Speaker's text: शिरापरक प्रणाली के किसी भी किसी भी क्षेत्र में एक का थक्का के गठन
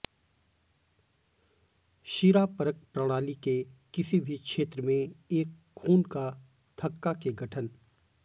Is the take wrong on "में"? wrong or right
right